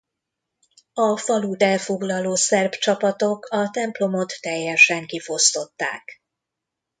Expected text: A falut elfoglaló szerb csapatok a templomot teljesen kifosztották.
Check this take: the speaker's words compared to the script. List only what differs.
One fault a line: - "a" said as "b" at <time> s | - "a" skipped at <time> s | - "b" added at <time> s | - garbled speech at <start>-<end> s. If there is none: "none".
none